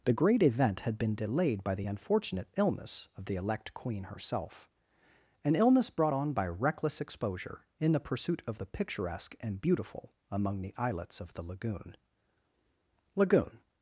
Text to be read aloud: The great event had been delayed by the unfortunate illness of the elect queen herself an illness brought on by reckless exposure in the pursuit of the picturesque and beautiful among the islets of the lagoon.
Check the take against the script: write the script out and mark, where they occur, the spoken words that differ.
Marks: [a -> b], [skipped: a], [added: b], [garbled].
The great event had been delayed by the unfortunate illness of the elect queen herself an illness brought on by reckless exposure in the pursuit of the picturesque and beautiful among the islets of the lagoon. [added: lagoon]